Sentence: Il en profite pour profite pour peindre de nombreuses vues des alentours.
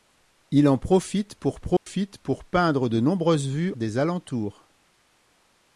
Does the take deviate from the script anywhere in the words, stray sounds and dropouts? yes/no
yes